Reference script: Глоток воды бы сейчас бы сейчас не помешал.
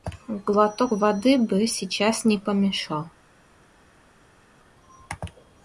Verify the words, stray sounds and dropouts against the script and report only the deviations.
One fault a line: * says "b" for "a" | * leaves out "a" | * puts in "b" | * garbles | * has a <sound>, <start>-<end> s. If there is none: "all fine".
* leaves out "бы сейчас"